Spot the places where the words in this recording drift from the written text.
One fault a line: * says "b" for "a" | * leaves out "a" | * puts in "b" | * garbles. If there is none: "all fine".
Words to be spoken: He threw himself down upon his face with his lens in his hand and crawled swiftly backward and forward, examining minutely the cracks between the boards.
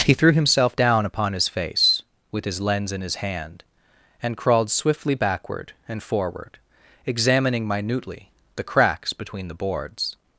all fine